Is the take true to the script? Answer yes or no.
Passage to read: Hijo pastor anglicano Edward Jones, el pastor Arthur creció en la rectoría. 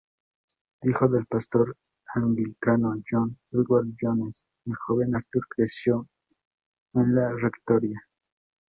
no